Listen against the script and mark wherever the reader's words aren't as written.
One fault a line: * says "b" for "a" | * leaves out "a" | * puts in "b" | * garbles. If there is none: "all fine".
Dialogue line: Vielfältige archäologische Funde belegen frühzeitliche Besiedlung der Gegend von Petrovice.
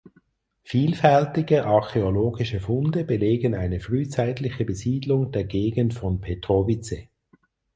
* puts in "eine"